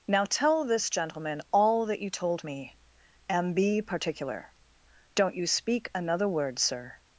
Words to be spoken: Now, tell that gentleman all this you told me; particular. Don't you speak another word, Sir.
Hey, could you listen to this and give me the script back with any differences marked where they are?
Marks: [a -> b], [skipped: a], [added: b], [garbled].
Now, tell [that -> this] gentleman all [this -> that] you told me; [added: and be] particular. Don't you speak another word, Sir.